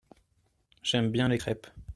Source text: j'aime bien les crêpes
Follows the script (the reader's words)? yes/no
yes